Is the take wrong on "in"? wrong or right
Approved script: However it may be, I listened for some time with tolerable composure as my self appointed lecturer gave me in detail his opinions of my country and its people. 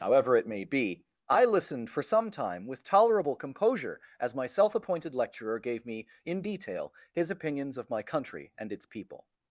right